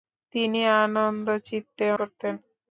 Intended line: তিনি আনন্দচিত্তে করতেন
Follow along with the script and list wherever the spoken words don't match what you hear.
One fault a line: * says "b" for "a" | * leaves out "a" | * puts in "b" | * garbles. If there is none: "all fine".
all fine